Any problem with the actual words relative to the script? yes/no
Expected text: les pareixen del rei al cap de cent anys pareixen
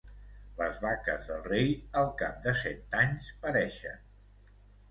yes